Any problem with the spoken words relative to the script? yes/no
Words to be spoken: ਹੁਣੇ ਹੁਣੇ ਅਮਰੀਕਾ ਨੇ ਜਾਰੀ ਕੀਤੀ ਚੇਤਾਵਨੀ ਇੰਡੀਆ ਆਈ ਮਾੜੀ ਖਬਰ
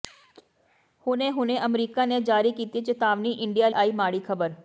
no